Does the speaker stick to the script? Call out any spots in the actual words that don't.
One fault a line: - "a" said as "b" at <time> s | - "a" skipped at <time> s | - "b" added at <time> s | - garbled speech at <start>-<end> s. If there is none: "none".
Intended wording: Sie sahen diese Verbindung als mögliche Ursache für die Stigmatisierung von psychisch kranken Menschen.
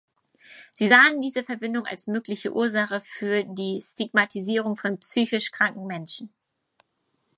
none